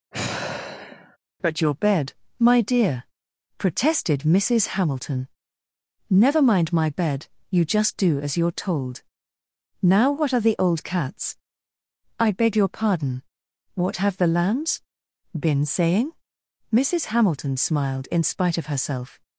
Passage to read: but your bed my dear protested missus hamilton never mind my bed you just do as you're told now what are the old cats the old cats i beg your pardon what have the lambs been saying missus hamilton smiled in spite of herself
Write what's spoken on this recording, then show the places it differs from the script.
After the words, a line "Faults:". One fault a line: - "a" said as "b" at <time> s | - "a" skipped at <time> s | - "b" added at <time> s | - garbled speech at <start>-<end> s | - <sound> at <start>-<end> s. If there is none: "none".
but your bed my dear protested missus hamilton never mind my bed you just do as you're told now what are the old cats i beg your pardon what have the lambs been saying missus hamilton smiled in spite of herself
Faults:
- sigh at 0.1-1.2 s
- "the old cats" skipped at 11.4 s